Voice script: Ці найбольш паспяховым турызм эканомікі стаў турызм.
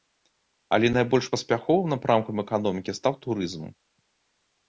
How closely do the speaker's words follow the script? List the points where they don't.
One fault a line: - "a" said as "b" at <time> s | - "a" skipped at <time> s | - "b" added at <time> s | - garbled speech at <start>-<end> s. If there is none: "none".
- "Ці" said as "Але" at 0.8 s
- "турызм" said as "напрамкам" at 1.9 s